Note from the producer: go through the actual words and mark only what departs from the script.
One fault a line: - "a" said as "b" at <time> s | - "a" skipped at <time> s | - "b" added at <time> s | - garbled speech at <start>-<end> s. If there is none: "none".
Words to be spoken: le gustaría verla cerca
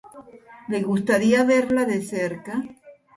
- "de" added at 1.9 s